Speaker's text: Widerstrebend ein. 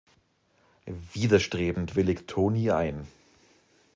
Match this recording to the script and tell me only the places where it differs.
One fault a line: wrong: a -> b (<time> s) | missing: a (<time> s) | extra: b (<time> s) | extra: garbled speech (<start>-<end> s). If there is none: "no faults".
extra: willigt Toni (1.9 s)